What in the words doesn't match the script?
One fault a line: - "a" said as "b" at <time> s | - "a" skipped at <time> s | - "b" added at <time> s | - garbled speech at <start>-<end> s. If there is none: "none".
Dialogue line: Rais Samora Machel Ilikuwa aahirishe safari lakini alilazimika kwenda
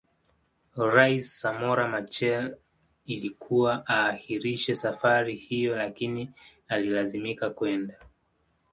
- "hiyo" added at 5.3 s